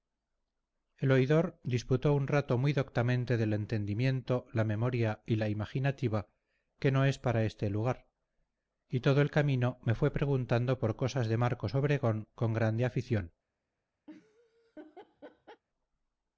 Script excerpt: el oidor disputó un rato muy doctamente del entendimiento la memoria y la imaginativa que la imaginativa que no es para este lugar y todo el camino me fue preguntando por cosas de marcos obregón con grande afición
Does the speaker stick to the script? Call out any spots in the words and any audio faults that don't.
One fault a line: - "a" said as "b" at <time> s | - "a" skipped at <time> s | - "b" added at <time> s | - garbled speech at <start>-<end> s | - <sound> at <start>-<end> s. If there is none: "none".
- "la imaginativa que" skipped at 6.9 s
- laugh at 14.1-15.6 s